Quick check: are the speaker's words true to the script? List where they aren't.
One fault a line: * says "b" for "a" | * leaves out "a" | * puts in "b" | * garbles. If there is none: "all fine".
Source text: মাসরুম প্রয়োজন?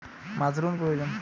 all fine